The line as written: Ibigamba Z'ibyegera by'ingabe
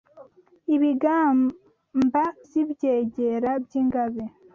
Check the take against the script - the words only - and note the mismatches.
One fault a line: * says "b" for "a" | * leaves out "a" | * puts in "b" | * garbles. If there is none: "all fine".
all fine